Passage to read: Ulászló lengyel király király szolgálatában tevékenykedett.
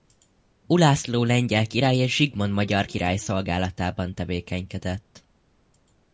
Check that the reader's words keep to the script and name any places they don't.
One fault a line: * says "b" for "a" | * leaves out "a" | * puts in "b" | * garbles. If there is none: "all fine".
* puts in "és Zsigmond magyar"